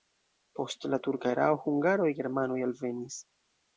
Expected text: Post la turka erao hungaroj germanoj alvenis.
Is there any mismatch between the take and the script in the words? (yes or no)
no